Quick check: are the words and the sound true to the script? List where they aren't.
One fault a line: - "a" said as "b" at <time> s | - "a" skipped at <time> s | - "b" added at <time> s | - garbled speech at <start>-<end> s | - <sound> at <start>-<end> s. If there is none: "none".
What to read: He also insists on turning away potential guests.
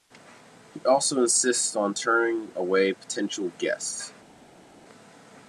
none